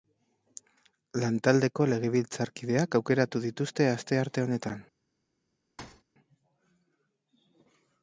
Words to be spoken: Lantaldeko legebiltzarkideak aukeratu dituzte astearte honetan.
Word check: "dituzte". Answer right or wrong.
right